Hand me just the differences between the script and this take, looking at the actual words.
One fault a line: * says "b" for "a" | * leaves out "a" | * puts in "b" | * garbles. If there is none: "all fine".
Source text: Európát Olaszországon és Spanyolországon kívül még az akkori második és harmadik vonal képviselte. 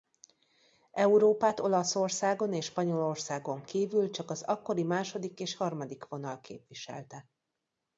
* says "csak" for "még"